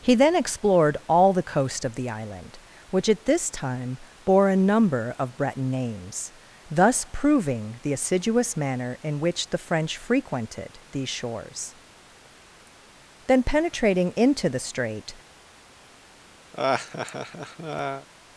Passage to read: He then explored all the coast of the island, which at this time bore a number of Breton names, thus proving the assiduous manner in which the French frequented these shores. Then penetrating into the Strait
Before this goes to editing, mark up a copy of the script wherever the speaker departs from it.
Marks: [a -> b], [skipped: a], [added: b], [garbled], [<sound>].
He then explored all the coast of the island, which at this time bore a number of Breton names, thus proving the assiduous manner in which the French frequented these shores. Then penetrating into the Strait [laugh]